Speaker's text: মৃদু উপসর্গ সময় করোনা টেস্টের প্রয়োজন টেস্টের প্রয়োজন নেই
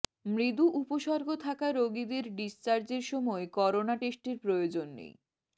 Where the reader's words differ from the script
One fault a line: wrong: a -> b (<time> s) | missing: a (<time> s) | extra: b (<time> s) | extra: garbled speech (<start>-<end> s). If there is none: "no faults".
extra: থাকা রোগীদের ডিসচার্জের (1.4 s)
missing: টেস্টের প্রয়োজন (4.9 s)